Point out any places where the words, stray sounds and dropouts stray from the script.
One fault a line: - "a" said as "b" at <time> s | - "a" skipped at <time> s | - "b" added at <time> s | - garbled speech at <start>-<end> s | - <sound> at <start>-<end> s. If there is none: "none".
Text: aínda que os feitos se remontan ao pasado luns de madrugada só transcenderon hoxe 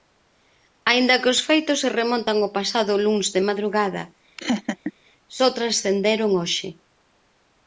- laugh at 4.4-4.9 s